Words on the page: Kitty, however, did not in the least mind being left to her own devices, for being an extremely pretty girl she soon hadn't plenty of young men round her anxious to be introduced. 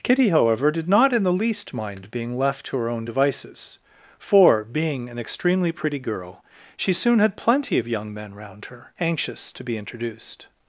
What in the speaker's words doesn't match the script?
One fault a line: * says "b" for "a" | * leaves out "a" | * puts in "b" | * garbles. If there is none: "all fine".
* says "had" for "hadn't"